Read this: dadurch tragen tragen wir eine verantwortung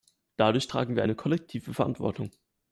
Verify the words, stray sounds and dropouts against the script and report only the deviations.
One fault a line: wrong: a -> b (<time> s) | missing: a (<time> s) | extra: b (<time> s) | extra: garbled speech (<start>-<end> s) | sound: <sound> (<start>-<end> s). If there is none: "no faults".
missing: tragen (0.9 s)
extra: kollektive (1.1 s)